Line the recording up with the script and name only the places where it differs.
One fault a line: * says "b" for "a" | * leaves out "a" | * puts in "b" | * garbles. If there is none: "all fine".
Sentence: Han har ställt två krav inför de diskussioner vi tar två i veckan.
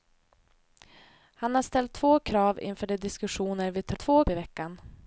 all fine